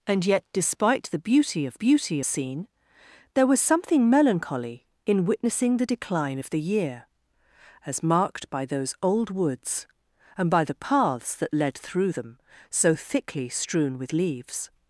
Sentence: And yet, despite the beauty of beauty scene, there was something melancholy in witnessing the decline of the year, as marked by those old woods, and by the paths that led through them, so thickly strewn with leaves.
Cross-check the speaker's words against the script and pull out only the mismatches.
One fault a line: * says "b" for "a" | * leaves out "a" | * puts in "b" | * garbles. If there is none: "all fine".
all fine